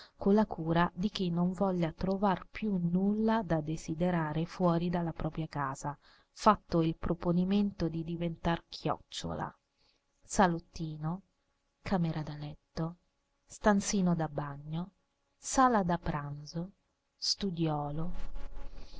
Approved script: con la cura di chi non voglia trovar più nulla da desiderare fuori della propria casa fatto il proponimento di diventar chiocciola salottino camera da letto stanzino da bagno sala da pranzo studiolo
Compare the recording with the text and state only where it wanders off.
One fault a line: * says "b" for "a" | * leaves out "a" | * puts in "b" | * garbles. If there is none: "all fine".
all fine